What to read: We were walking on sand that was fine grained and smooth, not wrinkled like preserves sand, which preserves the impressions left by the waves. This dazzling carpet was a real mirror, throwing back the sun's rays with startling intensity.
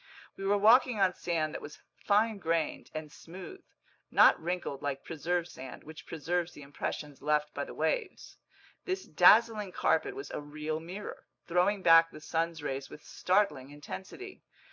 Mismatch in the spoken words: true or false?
false